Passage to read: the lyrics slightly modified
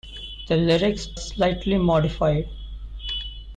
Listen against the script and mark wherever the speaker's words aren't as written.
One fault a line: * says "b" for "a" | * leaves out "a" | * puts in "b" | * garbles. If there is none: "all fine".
all fine